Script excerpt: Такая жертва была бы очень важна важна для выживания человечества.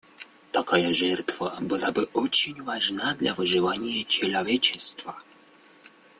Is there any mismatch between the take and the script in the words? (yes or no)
yes